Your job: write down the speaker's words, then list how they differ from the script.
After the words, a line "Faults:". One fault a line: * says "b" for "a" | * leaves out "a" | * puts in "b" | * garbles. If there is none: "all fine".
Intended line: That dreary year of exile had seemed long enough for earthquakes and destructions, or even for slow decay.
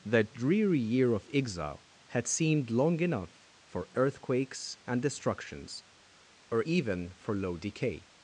That dreary year of exile had seemed long enough for earthquakes and destructions, or even for low decay.
Faults:
* says "low" for "slow"